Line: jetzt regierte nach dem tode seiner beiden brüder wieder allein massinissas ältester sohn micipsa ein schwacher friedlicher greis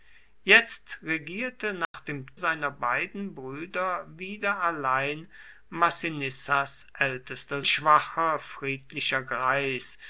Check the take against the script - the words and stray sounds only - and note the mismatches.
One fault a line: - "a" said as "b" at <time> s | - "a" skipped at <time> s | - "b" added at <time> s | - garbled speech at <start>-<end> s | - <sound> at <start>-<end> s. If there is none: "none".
- dropout at 1.8-1.9 s
- "tode" skipped at 2.2 s
- "sohn micipsa ein" skipped at 7.6 s